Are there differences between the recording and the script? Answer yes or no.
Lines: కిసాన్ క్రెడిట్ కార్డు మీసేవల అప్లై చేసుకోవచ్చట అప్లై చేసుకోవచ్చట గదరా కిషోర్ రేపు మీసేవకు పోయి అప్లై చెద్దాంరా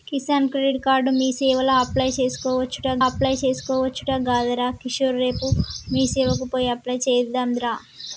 no